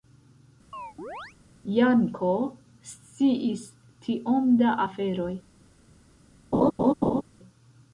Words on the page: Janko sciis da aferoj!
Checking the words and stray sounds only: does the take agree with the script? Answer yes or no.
no